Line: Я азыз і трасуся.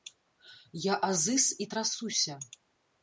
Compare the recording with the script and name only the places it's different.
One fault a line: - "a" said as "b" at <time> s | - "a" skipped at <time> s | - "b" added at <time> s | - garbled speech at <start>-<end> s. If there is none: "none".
none